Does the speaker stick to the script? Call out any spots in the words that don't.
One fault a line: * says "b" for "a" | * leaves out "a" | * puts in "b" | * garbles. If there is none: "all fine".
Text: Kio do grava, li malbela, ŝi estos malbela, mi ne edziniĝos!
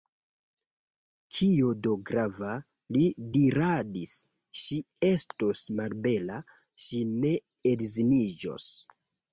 * says "diradis" for "malbela"
* says "ŝi" for "mi"